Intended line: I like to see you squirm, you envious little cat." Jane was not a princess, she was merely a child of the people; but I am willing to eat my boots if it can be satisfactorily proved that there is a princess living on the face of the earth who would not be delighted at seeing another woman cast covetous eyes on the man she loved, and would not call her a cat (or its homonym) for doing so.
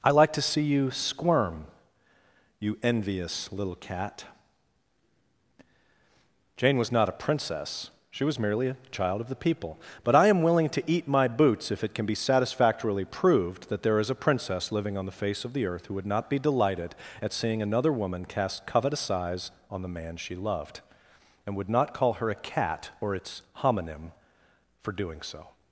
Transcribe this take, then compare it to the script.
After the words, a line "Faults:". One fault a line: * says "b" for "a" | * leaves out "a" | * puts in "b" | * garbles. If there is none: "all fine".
I like to see you squirm, you envious little cat." Jane was not a princess, she was merely a child of the people; but I am willing to eat my boots if it can be satisfactorily proved that there is a princess living on the face of the earth who would not be delighted at seeing another woman cast covetous eyes on the man she loved, and would not call her a cat (or its homonym) for doing so.
Faults:
all fine